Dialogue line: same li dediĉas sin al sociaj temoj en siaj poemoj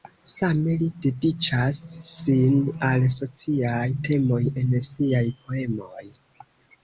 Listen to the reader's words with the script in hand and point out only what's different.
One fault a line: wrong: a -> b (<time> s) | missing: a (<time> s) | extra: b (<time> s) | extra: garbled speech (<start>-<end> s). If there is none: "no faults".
no faults